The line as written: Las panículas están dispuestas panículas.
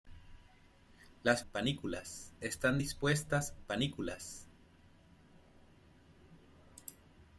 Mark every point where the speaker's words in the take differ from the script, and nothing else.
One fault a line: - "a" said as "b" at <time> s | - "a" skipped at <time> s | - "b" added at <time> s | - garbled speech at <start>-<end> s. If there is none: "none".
none